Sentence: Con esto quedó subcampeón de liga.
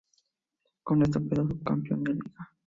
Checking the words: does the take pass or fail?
pass